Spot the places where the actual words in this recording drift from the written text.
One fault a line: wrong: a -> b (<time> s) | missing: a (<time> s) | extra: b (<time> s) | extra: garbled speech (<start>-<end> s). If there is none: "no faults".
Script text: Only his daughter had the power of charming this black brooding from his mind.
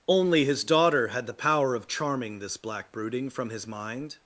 no faults